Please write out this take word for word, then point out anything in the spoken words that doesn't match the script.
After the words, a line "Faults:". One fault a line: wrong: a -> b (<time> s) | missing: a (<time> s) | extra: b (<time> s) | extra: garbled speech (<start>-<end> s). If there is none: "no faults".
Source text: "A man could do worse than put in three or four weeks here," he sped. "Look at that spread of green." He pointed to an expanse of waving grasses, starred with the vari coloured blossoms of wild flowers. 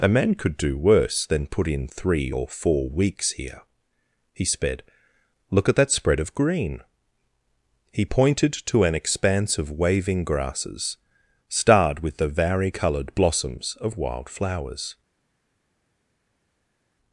"A man could do worse than put in three or four weeks here," he sped. "Look at that spread of green." He pointed to an expanse of waving grasses, starred with the vari coloured blossoms of wild flowers.
Faults:
no faults